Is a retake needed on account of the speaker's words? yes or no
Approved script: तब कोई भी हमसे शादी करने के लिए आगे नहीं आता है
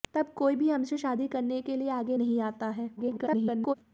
yes